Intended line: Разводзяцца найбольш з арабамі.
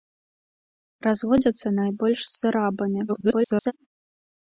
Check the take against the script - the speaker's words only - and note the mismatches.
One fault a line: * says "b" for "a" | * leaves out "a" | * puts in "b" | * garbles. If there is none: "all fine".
* garbles